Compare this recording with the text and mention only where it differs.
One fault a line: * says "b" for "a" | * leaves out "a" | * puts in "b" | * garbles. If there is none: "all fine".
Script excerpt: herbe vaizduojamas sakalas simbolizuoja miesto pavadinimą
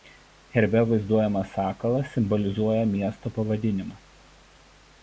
all fine